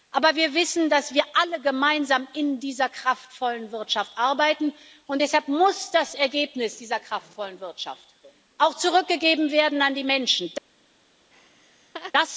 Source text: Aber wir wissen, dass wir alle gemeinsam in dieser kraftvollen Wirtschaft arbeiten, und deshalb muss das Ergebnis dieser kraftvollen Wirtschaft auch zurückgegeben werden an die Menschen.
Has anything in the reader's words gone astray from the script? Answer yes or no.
no